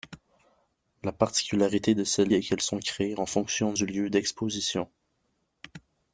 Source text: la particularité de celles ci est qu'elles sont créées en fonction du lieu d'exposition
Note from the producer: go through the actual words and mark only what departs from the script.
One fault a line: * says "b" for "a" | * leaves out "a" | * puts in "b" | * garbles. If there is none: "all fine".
* leaves out "ci"